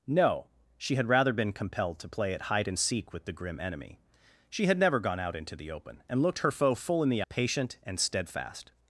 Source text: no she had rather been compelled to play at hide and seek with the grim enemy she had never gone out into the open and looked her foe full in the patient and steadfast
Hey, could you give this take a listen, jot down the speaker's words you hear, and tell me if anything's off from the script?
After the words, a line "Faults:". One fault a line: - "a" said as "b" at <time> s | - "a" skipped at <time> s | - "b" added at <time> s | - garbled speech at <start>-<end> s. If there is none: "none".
no she had rather been compelled to play at hide and seek with the grim enemy she had never gone out into the open and looked her foe full in the patient and steadfast
Faults:
none